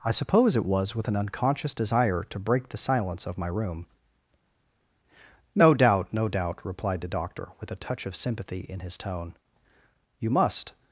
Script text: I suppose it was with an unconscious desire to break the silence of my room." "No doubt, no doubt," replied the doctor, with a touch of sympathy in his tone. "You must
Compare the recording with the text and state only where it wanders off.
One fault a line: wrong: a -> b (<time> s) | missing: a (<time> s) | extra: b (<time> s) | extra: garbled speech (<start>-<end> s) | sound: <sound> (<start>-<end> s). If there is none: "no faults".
no faults